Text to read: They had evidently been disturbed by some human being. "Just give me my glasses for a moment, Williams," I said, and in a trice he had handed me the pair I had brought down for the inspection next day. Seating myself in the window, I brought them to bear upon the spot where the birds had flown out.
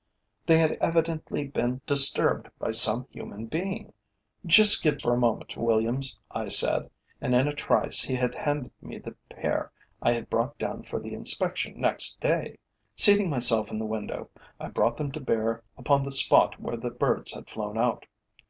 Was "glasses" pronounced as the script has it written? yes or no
no